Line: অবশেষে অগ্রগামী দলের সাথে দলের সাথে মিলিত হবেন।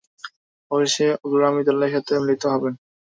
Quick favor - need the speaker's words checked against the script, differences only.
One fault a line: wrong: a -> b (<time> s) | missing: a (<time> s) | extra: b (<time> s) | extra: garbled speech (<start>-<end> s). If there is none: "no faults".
missing: দলের সাথে (2.1 s)